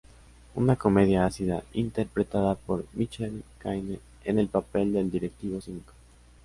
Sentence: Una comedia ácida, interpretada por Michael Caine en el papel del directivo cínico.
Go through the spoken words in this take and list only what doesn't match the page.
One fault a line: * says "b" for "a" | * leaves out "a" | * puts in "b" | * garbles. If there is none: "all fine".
all fine